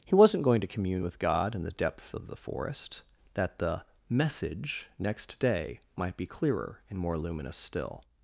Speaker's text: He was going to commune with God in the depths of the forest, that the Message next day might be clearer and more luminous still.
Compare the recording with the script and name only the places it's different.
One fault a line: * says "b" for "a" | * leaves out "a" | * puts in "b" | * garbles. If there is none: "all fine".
* says "wasn't" for "was"